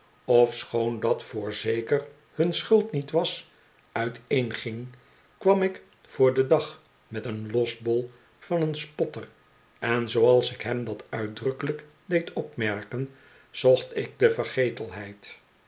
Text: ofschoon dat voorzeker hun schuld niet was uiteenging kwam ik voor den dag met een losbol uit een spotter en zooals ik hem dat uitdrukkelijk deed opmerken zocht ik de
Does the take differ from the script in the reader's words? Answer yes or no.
yes